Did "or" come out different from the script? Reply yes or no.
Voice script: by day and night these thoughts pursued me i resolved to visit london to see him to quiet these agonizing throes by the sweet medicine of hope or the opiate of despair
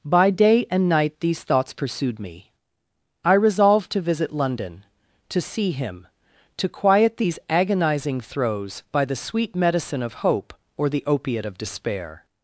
no